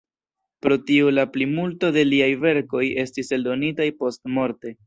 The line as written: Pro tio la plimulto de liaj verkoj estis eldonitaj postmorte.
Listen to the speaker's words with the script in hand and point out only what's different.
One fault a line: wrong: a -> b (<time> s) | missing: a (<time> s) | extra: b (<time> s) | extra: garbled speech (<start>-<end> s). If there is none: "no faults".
no faults